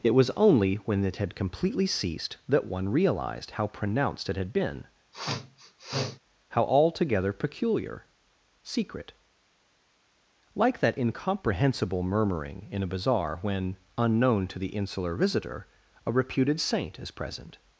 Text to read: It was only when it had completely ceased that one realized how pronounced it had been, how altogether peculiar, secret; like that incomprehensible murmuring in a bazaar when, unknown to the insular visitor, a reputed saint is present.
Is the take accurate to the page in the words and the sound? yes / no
no